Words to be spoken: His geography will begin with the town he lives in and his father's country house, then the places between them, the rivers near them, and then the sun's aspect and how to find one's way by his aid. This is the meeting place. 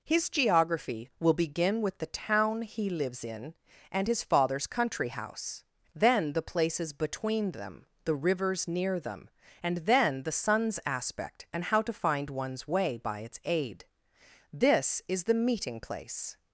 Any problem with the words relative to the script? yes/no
yes